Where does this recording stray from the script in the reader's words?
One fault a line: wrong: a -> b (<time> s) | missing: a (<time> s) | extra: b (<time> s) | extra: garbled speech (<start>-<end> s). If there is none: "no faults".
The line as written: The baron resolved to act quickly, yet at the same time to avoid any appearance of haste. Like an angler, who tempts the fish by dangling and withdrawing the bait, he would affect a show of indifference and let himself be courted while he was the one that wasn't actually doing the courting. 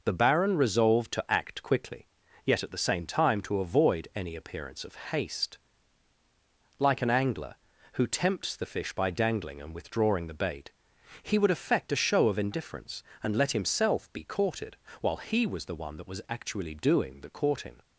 wrong: wasn't -> was (16.1 s)